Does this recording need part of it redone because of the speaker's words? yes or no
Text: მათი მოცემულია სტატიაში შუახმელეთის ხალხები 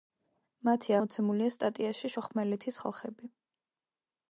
no